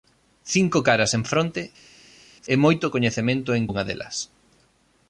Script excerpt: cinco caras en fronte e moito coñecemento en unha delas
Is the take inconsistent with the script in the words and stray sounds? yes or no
no